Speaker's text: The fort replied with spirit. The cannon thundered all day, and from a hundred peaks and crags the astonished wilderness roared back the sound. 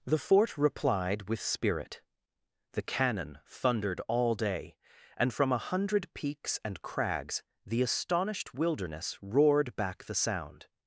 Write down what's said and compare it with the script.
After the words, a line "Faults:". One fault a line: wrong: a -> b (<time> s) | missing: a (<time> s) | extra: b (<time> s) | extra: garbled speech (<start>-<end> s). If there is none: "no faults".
The fort replied with spirit. The cannon thundered all day, and from a hundred peaks and crags the astonished wilderness roared back the sound.
Faults:
no faults